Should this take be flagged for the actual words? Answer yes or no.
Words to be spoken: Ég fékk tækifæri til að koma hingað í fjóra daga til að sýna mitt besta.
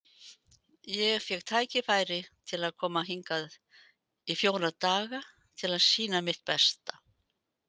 no